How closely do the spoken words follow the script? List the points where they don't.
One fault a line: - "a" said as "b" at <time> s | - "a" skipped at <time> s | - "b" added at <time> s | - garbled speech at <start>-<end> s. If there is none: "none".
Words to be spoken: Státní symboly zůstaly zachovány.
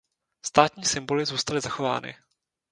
none